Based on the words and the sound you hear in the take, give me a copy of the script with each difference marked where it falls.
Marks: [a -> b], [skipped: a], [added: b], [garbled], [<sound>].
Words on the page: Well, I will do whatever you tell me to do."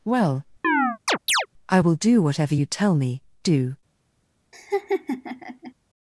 Well, [chirp] I will do whatever you tell me [skipped: to] do." [laugh]